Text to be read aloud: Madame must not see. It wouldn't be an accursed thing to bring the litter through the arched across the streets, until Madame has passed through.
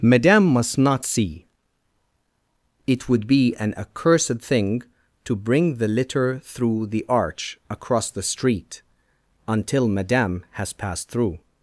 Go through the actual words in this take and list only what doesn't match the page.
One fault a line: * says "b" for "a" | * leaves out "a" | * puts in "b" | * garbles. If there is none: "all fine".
* says "would" for "wouldn't"
* says "arch" for "arched"
* says "street" for "streets"